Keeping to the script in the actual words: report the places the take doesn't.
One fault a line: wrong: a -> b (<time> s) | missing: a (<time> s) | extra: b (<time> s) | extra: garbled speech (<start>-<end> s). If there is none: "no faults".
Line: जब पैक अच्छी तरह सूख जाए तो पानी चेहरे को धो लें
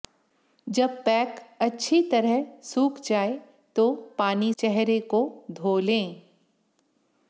no faults